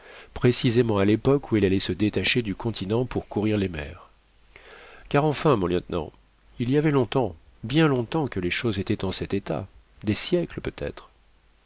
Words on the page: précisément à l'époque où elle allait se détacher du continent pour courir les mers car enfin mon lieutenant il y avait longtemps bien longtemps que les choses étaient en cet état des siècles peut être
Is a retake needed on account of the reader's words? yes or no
no